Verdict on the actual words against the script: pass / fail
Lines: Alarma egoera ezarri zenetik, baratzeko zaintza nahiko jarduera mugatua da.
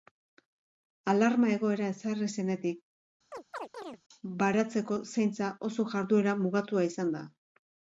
fail